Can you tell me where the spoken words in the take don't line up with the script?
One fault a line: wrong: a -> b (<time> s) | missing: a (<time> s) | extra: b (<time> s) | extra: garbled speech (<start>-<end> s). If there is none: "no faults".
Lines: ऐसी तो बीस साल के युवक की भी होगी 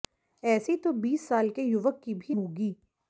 no faults